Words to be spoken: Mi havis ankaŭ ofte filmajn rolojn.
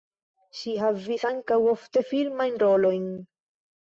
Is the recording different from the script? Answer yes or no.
yes